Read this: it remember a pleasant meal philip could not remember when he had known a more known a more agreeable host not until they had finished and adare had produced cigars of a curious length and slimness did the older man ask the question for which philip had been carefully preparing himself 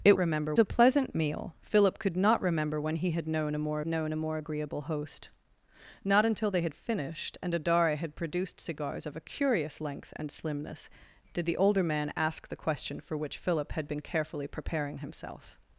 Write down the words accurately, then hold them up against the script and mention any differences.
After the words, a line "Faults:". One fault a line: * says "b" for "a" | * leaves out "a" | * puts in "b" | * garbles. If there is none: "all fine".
it remember a pleasant meal philip could not remember when he had known a more known a more agreeable host not until they had finished and adare had produced cigars of a curious length and slimness did the older man ask the question for which philip had been carefully preparing himself
Faults:
all fine